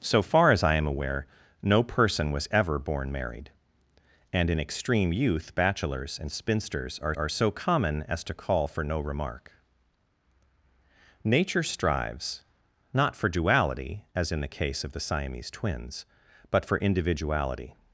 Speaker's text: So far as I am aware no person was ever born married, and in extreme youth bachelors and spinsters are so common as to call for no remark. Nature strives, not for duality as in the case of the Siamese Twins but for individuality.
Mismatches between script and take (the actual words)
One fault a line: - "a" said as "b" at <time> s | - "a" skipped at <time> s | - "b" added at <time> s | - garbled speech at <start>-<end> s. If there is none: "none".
- "are" added at 7.1 s